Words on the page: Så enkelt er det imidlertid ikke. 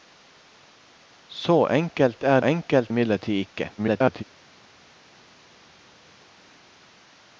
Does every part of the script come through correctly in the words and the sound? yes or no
no